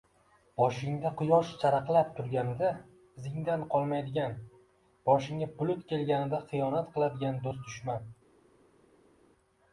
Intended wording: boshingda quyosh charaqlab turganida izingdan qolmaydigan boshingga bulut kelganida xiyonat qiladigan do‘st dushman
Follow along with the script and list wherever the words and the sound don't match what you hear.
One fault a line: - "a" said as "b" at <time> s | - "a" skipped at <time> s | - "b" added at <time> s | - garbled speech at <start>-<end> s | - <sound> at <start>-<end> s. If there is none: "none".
none